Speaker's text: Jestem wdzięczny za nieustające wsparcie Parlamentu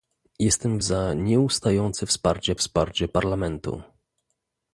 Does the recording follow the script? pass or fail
fail